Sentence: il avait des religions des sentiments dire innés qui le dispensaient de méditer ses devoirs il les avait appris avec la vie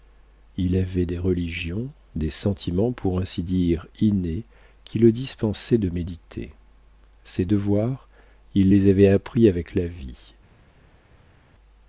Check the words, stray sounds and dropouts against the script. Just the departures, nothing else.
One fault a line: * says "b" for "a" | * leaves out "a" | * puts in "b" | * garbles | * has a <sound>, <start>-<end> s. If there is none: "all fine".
* puts in "pour ainsi"